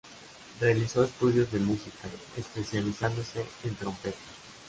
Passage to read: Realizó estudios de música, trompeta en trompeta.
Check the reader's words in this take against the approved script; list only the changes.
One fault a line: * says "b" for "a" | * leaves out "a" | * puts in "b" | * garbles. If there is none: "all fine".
* says "especializándose" for "trompeta"